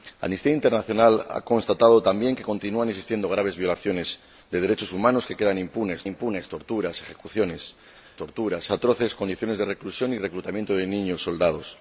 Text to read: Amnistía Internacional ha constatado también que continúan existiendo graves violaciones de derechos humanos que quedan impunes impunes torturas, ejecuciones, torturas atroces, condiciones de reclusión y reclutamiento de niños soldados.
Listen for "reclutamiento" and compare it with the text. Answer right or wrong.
right